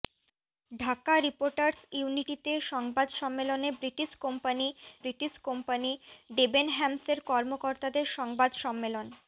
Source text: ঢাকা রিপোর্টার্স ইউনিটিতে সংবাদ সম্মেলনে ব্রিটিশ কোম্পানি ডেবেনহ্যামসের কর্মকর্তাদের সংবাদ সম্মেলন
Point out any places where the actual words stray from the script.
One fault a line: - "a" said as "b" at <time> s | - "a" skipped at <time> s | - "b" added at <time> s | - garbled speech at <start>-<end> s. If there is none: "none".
- "ব্রিটিশ কোম্পানি" added at 5.0 s